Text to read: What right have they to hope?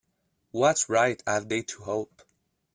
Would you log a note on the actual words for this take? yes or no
no